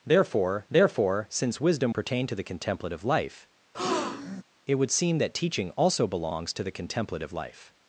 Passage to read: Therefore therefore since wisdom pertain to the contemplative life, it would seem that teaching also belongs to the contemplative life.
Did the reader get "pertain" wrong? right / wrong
right